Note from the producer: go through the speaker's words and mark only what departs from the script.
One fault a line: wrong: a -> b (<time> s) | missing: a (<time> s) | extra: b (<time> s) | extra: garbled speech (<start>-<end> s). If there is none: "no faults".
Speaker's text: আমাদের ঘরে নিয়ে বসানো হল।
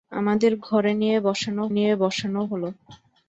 extra: নিয়ে বসানো (1.7 s)